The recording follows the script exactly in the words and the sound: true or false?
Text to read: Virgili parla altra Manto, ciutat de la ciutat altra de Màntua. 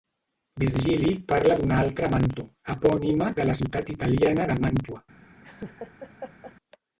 false